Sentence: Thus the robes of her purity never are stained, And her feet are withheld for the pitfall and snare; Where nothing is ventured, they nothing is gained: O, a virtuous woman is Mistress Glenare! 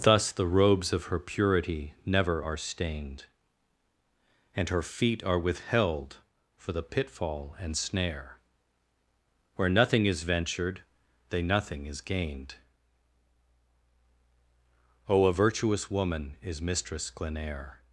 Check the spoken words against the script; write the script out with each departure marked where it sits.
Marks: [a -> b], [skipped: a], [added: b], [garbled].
Thus the robes of her purity never are stained, And her feet are withheld for the pitfall and snare; Where nothing is ventured, they nothing is gained: O, a virtuous woman is Mistress Glenare!